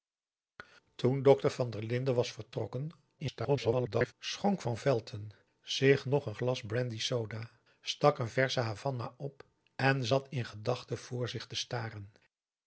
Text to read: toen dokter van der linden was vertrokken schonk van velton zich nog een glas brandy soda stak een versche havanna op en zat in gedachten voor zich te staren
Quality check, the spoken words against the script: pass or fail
fail